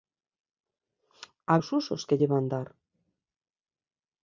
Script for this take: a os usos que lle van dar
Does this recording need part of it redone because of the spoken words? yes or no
no